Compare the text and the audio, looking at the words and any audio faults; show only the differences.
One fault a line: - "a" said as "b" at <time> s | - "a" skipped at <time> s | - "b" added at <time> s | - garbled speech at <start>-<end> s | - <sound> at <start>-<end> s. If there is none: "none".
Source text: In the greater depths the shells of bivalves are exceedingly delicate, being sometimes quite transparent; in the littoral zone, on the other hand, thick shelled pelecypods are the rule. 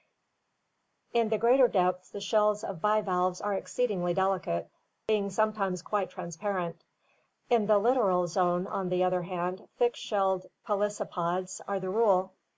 none